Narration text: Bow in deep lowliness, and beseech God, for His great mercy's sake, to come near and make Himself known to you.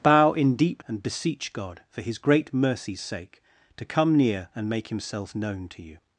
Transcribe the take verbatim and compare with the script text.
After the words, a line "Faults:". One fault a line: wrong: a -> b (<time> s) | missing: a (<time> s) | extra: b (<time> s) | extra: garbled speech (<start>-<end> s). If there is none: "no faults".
Bow in deep and beseech God, for His great mercy's sake, to come near and make Himself known to you.
Faults:
missing: lowliness (0.8 s)